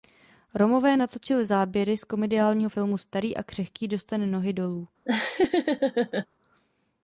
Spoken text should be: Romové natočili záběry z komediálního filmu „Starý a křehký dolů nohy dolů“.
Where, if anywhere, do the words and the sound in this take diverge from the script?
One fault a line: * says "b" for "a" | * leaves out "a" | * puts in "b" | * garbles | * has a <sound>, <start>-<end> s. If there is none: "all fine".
* says "dostane" for "dolů"
* has a laugh, 5.1-6.3 s